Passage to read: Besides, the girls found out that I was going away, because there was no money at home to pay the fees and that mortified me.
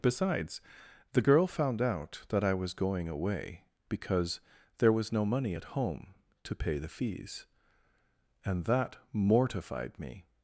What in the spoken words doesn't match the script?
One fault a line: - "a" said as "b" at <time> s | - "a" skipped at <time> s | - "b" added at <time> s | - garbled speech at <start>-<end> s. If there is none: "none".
- "girls" said as "girl" at 1.2 s